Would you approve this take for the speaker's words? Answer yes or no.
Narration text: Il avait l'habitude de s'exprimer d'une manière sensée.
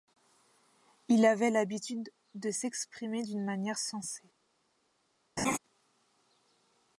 yes